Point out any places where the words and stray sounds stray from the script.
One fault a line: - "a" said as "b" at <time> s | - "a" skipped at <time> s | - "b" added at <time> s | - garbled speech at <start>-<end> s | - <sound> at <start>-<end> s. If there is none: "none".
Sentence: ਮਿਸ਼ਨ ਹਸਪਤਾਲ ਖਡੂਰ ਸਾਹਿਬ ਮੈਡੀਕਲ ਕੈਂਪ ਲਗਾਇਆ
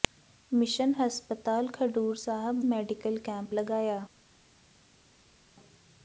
none